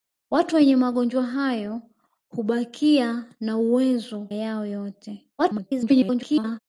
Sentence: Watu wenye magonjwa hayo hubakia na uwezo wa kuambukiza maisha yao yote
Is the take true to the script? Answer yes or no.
no